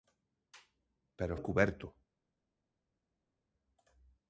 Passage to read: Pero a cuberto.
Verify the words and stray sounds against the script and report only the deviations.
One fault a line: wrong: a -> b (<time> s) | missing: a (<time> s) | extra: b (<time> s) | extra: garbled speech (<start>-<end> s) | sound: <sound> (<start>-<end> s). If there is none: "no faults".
no faults